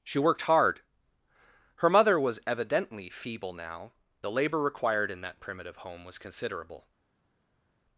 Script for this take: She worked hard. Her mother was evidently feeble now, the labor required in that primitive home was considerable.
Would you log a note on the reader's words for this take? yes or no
no